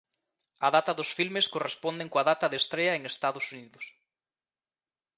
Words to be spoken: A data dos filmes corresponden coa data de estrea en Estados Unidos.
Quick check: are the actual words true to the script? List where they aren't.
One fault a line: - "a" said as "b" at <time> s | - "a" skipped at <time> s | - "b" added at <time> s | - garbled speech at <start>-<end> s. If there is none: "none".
none